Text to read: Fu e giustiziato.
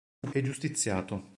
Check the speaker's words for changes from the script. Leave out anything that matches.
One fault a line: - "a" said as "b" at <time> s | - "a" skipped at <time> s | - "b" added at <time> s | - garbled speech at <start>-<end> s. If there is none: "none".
none